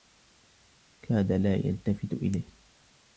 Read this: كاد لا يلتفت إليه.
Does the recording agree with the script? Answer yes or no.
yes